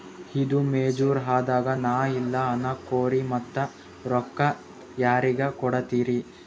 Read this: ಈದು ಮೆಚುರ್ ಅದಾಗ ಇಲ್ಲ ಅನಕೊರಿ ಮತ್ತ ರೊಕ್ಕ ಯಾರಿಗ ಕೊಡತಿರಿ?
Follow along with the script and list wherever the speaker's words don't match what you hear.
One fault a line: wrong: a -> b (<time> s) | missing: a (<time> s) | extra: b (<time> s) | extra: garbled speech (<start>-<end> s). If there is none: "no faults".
extra: ನಾ (1.8 s)